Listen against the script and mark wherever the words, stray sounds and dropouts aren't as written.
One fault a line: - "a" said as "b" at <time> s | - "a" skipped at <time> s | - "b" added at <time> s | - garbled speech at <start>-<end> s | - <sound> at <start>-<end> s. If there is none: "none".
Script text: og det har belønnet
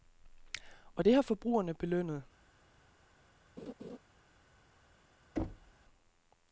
- "forbrugerne" added at 1.2 s
- laugh at 3.6-4.0 s
- thud at 5.4-5.7 s